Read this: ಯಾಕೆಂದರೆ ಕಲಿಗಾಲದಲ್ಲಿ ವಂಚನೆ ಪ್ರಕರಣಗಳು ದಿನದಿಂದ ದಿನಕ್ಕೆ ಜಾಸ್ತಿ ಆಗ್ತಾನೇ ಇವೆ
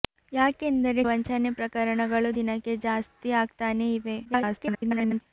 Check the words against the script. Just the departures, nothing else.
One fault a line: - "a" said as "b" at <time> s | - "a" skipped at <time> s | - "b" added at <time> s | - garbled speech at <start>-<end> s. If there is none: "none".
- "ಕಲಿಗಾಲದಲ್ಲಿ" skipped at 1.0 s
- "ದಿನದಿಂದ" skipped at 2.3 s
- garbled speech at 4.3-5.2 s